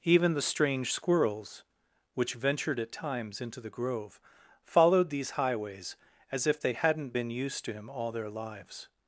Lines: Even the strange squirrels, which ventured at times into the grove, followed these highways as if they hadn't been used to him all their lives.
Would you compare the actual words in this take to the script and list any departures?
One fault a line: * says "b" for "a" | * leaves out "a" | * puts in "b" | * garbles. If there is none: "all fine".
all fine